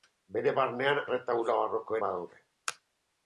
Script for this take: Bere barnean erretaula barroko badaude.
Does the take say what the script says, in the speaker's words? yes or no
yes